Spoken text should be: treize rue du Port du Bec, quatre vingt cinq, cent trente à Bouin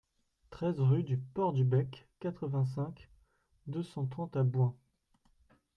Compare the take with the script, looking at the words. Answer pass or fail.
fail